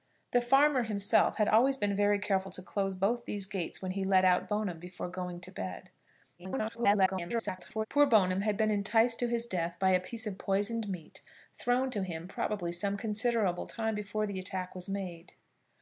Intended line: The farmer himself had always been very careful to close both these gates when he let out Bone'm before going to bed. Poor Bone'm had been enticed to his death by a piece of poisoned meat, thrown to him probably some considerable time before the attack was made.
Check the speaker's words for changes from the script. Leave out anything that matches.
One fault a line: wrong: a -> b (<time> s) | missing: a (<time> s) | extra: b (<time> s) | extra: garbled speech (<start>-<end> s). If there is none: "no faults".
extra: garbled speech (6.4-7.9 s)